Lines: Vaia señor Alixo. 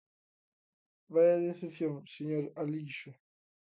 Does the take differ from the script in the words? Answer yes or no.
yes